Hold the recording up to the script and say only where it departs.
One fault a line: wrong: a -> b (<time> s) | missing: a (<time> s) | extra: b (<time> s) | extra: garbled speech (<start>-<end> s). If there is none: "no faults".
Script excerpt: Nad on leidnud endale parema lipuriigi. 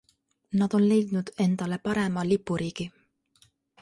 no faults